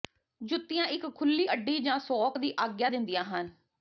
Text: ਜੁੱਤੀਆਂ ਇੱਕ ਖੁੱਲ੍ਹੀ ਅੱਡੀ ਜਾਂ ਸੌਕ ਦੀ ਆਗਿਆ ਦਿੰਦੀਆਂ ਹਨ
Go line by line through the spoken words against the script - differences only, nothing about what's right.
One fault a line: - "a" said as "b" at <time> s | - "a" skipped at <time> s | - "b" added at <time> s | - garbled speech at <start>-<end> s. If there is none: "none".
none